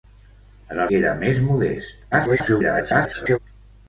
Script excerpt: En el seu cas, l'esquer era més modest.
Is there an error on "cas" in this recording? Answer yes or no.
yes